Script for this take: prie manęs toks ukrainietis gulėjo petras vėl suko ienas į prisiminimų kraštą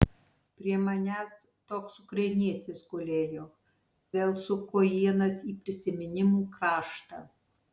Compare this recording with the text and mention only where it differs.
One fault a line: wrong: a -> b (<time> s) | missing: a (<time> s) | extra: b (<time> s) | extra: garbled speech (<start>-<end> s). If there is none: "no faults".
missing: petras (3.5 s)